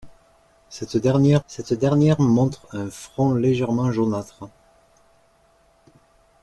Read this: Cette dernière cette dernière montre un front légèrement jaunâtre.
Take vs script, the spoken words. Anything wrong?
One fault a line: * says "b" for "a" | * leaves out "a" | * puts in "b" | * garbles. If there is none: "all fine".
all fine